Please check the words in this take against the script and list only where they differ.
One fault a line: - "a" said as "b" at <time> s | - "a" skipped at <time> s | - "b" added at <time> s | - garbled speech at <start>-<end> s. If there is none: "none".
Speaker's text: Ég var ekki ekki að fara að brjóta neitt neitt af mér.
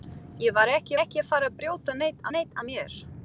none